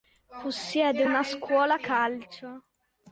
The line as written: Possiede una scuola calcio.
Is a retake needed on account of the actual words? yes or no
no